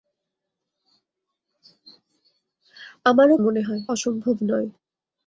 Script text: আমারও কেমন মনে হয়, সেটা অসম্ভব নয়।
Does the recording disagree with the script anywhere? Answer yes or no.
yes